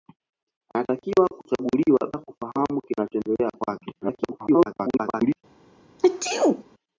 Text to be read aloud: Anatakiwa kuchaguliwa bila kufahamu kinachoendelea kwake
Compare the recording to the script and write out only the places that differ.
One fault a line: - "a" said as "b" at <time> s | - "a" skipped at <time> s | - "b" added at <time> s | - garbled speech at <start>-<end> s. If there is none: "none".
- "bila" skipped at 2.1 s
- garbled speech at 4.0-5.4 s